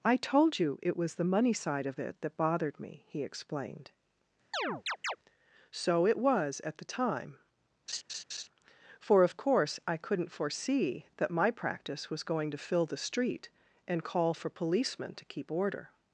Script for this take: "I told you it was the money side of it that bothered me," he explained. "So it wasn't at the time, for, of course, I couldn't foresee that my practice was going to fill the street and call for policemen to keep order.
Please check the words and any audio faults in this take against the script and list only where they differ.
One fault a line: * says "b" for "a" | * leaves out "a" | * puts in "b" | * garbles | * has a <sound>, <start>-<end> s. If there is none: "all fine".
* has a chirp, 4.5-5.2 s
* says "was" for "wasn't"
* has a laugh, 7.9-8.5 s